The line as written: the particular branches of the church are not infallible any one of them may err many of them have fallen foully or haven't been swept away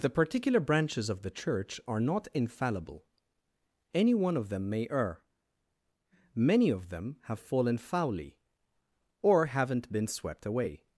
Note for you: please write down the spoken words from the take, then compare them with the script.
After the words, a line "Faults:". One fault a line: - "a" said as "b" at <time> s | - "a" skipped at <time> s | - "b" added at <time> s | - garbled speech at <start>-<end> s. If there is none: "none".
the particular branches of the church are not infallible any one of them may err many of them have fallen foully or haven't been swept away
Faults:
none